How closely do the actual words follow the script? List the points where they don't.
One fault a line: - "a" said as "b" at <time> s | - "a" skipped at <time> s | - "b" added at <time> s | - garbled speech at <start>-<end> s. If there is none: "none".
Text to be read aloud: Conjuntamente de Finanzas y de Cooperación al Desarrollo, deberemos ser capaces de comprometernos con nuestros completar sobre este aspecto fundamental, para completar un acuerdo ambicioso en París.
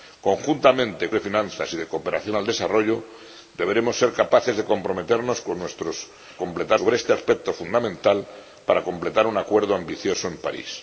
none